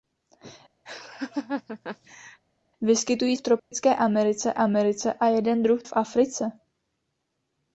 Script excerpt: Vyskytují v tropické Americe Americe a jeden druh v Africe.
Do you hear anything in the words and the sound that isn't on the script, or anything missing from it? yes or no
yes